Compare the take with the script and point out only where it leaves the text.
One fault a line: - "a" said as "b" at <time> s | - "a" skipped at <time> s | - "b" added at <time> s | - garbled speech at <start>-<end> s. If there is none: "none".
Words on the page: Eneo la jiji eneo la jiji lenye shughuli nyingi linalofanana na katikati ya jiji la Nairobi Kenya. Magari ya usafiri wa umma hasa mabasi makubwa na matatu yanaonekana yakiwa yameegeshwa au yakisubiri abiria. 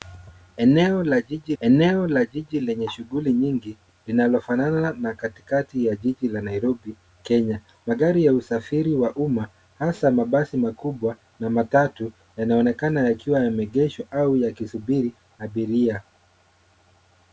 none